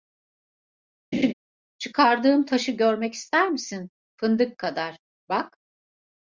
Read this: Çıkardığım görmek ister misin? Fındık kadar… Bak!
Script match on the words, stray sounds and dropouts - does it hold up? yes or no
no